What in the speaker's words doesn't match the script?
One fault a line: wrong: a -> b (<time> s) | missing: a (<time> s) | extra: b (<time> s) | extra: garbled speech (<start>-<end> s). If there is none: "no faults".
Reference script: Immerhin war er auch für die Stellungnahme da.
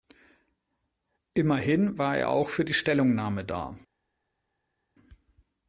no faults